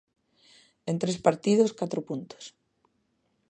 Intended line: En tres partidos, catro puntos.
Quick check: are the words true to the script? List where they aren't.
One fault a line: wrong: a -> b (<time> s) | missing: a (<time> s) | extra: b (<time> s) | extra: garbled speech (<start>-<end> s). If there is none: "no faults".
no faults